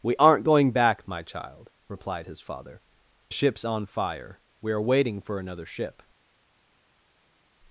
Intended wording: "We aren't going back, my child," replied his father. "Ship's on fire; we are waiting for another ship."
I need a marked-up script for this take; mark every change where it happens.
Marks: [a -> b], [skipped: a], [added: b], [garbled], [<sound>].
"We aren't going back, my child," replied his father. "Ship's on fire; we are waiting for another ship."